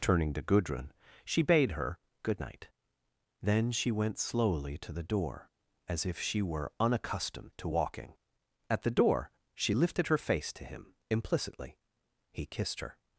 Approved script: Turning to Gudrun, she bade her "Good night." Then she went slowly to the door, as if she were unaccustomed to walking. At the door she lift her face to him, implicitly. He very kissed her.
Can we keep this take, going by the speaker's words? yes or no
no